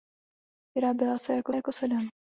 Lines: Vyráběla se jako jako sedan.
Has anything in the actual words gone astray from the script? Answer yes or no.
no